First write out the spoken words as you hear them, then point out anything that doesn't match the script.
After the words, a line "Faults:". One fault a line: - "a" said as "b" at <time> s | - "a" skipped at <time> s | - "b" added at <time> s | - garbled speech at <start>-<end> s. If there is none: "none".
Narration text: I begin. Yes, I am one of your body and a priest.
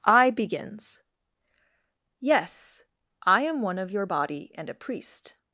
I begins. Yes, I am one of your body and a priest.
Faults:
- "begin" said as "begins" at 0.3 s